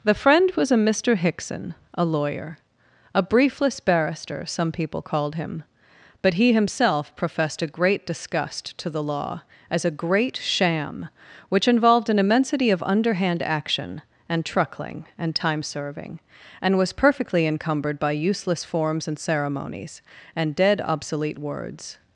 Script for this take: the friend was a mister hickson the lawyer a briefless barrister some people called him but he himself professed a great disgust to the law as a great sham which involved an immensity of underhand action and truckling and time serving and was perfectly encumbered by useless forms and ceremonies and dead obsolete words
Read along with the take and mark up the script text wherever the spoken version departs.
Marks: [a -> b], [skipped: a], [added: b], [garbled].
the friend was a mister hickson [the -> a] lawyer a briefless barrister some people called him but he himself professed a great disgust to the law as a great sham which involved an immensity of underhand action and truckling and time serving and was perfectly encumbered by useless forms and ceremonies and dead obsolete words